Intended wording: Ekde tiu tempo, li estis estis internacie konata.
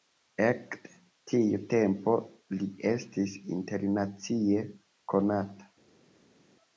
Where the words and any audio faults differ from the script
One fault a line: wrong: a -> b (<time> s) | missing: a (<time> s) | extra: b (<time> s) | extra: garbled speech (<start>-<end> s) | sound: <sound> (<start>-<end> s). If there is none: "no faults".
missing: estis (3.3 s)